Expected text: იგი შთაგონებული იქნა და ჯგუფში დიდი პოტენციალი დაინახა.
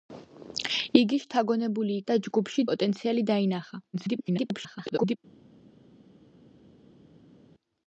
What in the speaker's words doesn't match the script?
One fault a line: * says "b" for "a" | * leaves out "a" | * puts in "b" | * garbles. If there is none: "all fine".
* leaves out "იქნა"
* leaves out "დიდი"
* garbles